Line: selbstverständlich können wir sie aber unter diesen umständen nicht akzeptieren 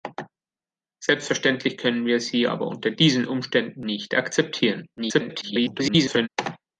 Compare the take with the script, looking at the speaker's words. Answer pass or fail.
fail